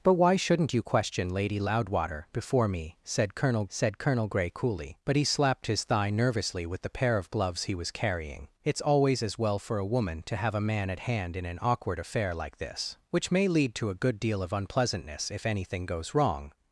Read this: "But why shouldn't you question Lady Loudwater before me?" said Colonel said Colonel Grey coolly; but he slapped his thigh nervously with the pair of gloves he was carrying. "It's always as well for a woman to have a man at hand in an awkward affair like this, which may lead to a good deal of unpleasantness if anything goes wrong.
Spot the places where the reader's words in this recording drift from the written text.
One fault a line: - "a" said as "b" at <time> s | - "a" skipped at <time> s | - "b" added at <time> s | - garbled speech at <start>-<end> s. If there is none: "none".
none